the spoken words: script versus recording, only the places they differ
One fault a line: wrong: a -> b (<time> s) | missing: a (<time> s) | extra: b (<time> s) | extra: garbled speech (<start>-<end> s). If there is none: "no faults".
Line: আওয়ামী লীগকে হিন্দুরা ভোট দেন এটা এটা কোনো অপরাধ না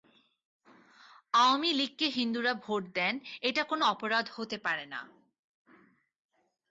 missing: এটা (3.6 s)
extra: হতে পারে (4.3 s)